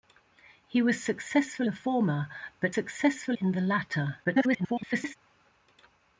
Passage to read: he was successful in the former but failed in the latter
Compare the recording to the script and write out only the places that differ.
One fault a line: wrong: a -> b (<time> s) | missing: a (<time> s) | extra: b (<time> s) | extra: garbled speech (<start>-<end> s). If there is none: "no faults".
missing: in (1.7 s)
wrong: failed -> successful (2.7 s)
extra: garbled speech (4.2-5.2 s)